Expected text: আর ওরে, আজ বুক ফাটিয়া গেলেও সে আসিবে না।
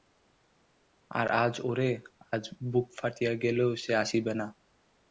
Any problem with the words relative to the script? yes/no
yes